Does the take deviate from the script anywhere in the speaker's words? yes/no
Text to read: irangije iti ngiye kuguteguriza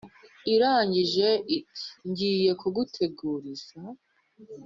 no